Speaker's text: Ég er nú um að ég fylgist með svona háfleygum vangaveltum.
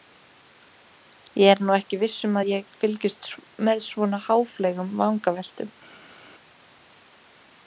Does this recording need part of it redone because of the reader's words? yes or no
yes